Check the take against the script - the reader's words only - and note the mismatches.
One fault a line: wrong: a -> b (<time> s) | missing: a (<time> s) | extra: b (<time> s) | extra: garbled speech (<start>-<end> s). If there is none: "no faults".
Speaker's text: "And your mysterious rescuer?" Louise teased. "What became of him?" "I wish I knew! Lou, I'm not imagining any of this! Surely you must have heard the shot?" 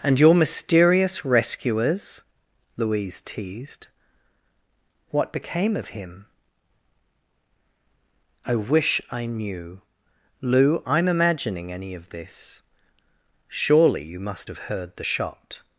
wrong: rescuer -> rescuers (1.2 s)
missing: not (11.1 s)